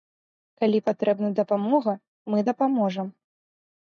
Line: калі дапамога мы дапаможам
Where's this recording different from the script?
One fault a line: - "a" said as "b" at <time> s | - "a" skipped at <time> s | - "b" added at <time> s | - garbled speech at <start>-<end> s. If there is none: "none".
- "патрэбна" added at 0.9 s